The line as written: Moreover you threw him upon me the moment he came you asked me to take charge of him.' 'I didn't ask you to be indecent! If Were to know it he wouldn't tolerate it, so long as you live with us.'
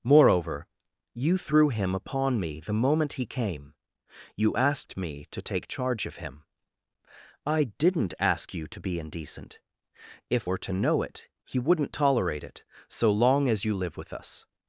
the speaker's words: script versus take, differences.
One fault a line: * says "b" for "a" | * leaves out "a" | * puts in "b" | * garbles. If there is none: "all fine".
all fine